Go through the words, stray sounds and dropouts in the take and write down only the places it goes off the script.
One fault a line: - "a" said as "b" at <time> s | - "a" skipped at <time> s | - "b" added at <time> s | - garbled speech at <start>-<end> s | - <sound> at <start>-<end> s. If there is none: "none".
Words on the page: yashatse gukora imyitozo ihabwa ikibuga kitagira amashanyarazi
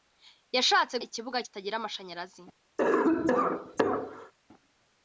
- "gukora imyitozo ihabwa" skipped at 0.9 s
- cough at 2.8-4.3 s